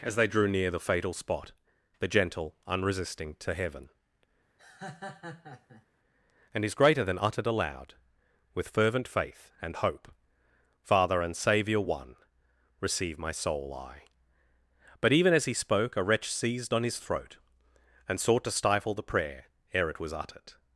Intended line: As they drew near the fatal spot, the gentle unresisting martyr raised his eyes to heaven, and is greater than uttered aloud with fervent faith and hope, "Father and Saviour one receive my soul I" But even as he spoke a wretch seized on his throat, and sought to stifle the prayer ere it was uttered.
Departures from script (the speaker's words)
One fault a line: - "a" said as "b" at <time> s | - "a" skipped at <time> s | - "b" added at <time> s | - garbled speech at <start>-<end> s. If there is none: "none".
- "martyr raised his eyes" skipped at 3.4 s